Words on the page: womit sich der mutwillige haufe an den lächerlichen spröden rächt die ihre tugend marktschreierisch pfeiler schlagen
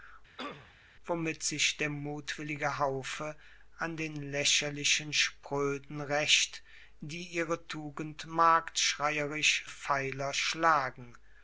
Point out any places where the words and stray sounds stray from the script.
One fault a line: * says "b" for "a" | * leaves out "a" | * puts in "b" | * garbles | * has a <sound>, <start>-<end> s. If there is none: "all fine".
* has a throat clearing, 0.4-0.8 s